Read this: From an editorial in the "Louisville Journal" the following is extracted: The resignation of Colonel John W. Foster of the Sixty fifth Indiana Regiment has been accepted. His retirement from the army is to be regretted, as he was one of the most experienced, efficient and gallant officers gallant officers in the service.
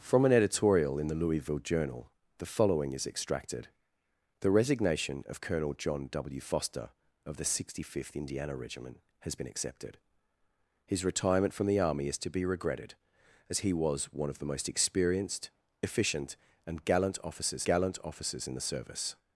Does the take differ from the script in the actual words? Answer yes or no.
no